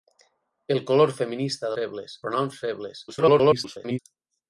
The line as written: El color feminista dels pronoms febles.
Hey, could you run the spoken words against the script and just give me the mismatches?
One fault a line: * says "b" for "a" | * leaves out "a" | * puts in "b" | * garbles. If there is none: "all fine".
* says "febles" for "dels"
* garbles